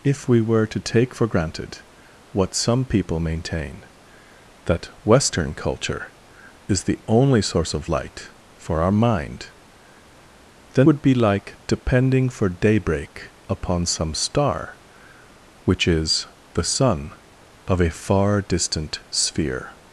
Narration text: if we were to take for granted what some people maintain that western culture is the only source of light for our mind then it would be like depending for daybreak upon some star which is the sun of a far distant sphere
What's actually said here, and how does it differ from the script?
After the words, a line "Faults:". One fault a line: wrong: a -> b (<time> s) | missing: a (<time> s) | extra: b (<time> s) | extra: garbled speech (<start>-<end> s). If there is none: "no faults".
if we were to take for granted what some people maintain that western culture is the only source of light for our mind then would be like depending for daybreak upon some star which is the sun of a far distant sphere
Faults:
missing: it (10.9 s)